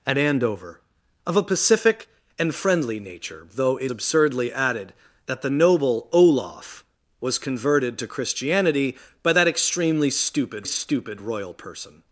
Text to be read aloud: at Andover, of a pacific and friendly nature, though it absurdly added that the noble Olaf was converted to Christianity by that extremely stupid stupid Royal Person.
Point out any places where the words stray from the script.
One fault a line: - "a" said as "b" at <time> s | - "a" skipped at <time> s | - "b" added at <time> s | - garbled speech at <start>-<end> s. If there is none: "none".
none